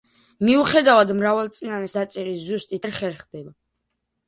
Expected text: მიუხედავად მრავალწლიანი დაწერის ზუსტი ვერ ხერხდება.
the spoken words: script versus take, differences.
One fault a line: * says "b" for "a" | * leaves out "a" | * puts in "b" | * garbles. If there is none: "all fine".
all fine